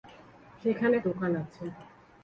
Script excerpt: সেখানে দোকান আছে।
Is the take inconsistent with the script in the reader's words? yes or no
no